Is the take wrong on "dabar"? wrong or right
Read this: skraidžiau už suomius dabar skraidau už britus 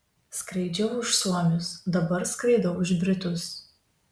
right